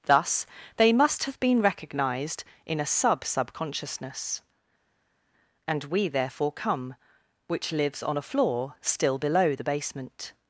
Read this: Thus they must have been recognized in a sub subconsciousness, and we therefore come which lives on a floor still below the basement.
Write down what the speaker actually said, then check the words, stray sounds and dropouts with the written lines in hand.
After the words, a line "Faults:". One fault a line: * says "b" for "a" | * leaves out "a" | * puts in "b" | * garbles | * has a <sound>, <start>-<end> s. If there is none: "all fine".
Thus they must have been recognized in a sub subconsciousness, and we therefore come which lives on a floor still below the basement.
Faults:
all fine